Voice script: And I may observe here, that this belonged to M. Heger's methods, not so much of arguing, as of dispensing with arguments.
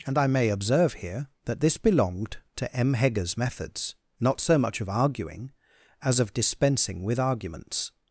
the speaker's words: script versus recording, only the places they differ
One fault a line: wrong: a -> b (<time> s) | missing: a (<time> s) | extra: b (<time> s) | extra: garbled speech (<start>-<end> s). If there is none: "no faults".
no faults